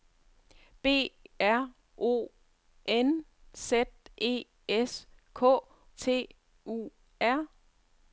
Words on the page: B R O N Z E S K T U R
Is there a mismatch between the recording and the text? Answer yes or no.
no